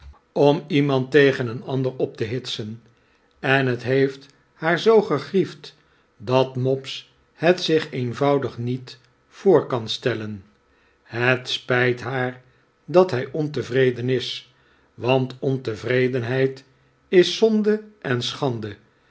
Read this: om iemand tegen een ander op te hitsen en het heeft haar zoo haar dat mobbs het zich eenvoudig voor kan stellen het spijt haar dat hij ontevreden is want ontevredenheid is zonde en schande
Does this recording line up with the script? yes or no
no